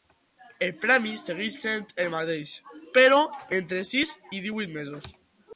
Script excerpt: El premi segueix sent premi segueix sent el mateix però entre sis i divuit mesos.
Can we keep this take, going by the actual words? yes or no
no